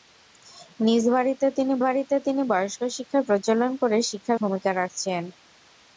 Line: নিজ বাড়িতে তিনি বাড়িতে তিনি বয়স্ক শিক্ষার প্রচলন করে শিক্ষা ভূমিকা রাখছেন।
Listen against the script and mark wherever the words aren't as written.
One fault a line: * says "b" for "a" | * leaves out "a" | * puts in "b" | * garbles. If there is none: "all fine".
all fine